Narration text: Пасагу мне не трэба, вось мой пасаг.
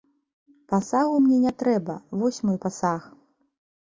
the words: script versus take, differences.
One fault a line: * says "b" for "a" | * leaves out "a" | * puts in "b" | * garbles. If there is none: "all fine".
all fine